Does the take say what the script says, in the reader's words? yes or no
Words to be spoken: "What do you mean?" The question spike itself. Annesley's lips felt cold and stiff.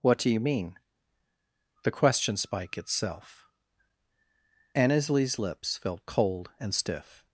yes